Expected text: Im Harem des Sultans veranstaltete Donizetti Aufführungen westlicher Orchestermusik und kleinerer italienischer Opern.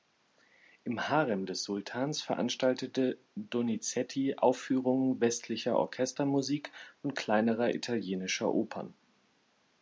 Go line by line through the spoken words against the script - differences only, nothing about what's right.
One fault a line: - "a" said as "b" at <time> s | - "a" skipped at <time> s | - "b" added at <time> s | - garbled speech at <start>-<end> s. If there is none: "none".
none